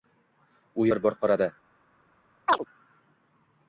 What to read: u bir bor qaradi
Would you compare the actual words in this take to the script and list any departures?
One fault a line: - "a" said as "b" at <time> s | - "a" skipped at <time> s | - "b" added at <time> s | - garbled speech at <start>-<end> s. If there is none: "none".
none